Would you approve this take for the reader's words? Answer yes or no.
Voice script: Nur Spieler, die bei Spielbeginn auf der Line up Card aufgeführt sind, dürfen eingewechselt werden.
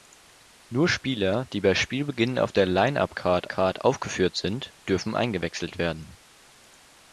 no